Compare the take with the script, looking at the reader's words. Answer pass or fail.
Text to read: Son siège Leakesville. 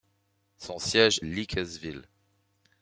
pass